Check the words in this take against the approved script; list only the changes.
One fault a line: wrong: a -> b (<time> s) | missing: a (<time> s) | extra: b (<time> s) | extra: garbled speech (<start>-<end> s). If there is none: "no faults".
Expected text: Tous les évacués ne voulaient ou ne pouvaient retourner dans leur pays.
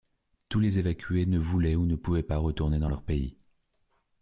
extra: pas (2.2 s)